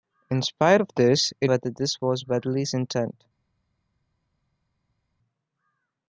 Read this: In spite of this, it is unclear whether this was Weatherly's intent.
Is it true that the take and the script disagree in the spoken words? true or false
true